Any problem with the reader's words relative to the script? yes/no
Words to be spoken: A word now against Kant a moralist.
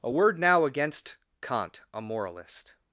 no